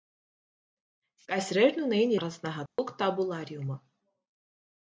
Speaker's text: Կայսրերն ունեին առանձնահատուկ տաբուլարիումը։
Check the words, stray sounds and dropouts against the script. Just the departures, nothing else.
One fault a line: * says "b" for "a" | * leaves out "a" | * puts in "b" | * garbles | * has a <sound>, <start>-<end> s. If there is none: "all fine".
* has a dropout, 2.7-2.8 s